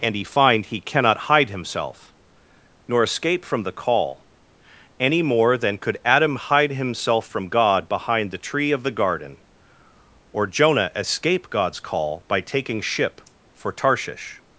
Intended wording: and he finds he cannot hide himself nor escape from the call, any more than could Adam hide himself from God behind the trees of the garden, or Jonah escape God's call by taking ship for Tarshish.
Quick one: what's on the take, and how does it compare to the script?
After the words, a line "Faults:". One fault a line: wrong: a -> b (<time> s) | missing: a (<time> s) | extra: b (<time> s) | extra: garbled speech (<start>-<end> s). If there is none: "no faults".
and he find he cannot hide himself nor escape from the call, any more than could Adam hide himself from God behind the tree of the garden, or Jonah escape God's call by taking ship for Tarshish.
Faults:
wrong: finds -> find (0.2 s)
wrong: trees -> tree (8.4 s)